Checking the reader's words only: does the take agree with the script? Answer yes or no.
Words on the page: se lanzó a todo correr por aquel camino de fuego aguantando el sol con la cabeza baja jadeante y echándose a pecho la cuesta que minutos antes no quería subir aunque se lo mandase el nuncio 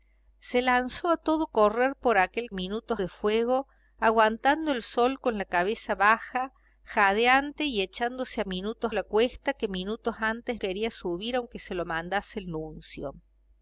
no